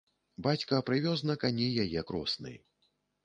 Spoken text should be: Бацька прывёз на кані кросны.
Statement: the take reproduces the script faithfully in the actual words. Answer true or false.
false